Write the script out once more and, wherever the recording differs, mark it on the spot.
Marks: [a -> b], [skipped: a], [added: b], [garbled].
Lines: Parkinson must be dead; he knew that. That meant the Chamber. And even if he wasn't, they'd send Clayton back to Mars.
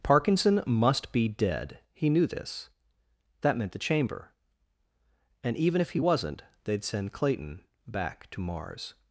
Parkinson must be dead; he knew [that. -> this] That meant the Chamber. And even if he wasn't, they'd send Clayton back to Mars.